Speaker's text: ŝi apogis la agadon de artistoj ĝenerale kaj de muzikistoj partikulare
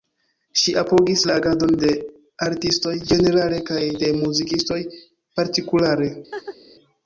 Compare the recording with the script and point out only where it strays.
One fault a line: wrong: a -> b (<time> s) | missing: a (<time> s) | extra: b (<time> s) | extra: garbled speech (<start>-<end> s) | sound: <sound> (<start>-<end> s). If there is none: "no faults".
sound: laugh (6.3-6.6 s)